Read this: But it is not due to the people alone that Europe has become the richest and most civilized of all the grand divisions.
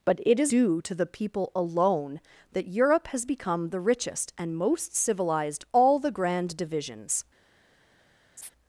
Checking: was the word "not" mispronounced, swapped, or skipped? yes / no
yes